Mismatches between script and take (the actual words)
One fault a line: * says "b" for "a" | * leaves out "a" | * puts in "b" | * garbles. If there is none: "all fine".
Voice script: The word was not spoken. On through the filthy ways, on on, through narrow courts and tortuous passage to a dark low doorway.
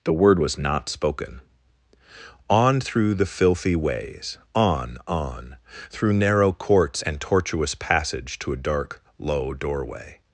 all fine